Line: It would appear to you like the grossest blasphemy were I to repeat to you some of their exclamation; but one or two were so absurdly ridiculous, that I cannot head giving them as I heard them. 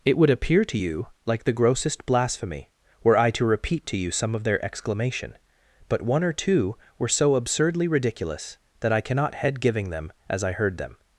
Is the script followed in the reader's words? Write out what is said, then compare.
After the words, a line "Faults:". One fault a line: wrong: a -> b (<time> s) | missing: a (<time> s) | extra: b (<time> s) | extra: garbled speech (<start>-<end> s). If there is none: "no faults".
It would appear to you like the grossest blasphemy were I to repeat to you some of their exclamation; but one or two were so absurdly ridiculous, that I cannot head giving them as I heard them.
Faults:
no faults